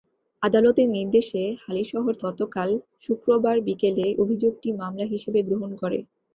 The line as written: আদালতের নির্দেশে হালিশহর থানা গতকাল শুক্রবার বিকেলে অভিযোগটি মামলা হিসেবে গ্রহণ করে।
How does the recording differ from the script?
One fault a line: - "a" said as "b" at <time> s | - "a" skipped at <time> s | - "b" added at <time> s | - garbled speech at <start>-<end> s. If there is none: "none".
- "থানা" skipped at 2.1 s